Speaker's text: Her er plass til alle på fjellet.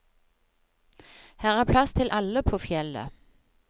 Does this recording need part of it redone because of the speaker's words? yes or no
no